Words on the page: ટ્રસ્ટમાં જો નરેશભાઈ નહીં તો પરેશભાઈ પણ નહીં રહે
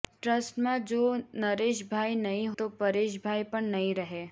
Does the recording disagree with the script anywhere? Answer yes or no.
no